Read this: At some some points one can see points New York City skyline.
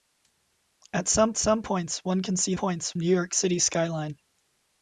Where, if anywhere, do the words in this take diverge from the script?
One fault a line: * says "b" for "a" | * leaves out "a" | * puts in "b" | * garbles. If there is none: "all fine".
all fine